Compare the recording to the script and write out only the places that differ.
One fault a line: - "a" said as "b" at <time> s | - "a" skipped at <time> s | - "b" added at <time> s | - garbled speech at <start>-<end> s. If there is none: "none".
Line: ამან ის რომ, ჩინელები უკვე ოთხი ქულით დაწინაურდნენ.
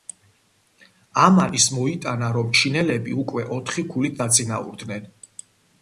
- "მოიტანა" added at 1.8 s